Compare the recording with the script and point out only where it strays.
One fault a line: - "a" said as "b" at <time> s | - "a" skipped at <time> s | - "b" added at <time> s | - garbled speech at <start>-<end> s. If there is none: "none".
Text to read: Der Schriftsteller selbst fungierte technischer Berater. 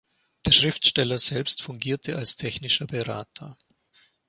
- "als" added at 2.2 s